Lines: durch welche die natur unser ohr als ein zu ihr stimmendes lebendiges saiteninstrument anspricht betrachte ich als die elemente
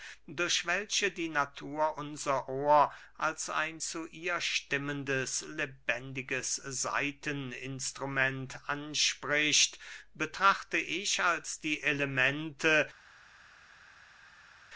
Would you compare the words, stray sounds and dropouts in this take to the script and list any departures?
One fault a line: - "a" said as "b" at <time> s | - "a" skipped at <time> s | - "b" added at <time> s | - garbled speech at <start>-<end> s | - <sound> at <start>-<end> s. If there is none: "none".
none